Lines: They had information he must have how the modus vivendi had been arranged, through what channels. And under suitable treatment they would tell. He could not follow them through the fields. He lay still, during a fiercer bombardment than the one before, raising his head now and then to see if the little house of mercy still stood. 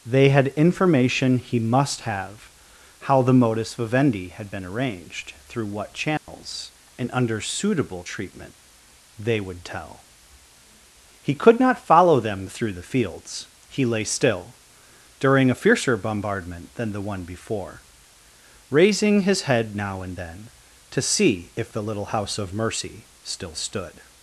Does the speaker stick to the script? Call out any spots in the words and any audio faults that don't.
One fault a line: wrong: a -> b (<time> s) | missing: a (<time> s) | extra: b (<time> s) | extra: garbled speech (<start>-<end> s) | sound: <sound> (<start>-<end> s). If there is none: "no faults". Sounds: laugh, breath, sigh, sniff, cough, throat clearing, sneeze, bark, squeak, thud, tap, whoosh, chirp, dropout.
sound: dropout (6.2-6.3 s)